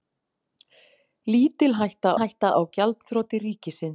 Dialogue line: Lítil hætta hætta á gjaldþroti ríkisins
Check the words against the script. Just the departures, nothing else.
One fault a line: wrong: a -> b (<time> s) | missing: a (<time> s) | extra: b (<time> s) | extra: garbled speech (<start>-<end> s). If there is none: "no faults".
no faults